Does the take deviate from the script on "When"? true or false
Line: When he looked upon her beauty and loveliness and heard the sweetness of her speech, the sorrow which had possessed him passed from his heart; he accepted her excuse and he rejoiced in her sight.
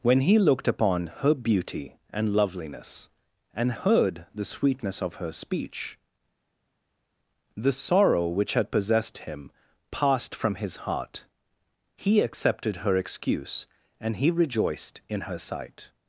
false